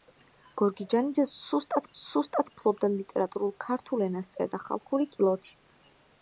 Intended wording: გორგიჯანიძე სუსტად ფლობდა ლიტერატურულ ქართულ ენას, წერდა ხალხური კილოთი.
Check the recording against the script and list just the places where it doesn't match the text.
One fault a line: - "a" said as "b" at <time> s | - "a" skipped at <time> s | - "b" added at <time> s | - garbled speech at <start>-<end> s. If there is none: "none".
- "სუსტად" added at 1.9 s